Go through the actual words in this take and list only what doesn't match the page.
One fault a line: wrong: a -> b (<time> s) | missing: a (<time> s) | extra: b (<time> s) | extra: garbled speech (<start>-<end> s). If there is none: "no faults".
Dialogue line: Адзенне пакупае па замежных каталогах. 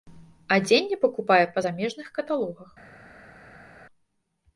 no faults